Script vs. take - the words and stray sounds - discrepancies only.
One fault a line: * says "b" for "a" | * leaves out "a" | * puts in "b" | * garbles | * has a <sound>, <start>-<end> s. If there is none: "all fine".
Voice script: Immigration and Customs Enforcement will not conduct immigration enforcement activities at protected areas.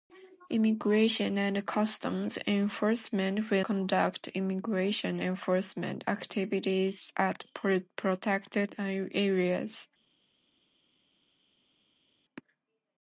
* leaves out "not"